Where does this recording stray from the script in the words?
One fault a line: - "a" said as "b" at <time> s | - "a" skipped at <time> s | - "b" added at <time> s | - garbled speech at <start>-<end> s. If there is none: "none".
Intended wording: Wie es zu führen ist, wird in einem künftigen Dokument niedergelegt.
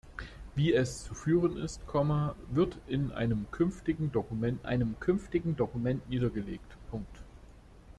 - "einem künftigen Dokument" added at 4.6 s